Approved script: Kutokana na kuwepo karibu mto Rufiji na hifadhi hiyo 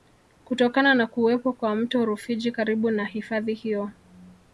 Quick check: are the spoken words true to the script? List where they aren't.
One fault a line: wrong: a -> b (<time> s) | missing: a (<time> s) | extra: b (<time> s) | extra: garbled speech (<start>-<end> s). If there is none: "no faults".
wrong: karibu -> kwa (1.5 s)
extra: karibu (2.5 s)